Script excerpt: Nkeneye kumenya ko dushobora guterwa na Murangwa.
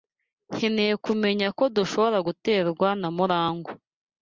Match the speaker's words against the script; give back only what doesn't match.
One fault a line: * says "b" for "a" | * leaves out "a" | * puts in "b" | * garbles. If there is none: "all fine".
all fine